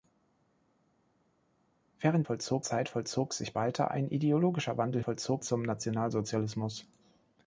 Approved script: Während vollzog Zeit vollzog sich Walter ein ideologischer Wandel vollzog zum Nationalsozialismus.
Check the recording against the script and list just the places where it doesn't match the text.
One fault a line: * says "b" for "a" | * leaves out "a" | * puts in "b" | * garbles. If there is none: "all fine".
all fine